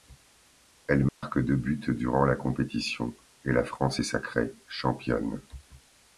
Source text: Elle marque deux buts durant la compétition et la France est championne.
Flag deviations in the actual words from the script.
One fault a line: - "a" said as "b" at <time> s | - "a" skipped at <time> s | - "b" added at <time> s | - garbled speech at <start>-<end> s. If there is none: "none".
- "sacrée" added at 4.0 s